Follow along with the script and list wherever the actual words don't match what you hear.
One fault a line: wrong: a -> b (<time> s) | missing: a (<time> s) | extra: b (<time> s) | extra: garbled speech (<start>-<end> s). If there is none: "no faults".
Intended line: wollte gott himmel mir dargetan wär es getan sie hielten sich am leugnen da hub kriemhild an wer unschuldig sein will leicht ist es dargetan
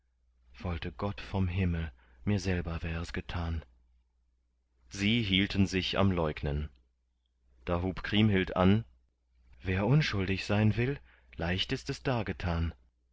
extra: vom (1.2 s)
wrong: dargetan -> selber (2.4 s)